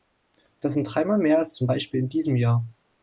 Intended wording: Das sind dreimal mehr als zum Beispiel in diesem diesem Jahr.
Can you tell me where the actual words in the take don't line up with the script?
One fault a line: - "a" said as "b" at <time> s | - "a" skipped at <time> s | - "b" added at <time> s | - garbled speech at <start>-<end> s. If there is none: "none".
- "diesem" skipped at 2.4 s